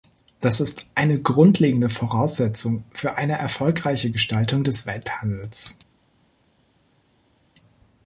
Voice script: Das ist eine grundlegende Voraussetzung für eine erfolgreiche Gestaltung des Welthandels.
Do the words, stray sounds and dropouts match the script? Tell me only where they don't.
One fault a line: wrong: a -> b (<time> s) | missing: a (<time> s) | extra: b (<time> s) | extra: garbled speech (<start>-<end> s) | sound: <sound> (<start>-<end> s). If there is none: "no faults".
no faults